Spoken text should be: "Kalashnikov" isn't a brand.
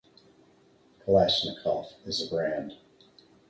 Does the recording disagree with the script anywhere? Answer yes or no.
yes